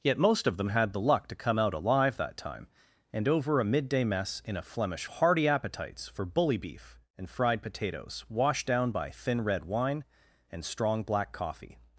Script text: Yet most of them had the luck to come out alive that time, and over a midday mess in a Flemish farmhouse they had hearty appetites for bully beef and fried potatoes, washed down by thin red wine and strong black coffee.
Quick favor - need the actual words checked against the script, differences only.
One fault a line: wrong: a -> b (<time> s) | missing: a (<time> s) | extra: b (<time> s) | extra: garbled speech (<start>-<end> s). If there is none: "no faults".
missing: farmhouse they had (5.0 s)